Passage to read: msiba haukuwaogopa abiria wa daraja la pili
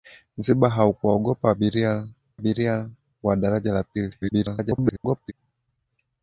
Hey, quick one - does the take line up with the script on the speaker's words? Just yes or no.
no